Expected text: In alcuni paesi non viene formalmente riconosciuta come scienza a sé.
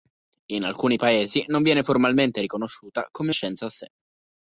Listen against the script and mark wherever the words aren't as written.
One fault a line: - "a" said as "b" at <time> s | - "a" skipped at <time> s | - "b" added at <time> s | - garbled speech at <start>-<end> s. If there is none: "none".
none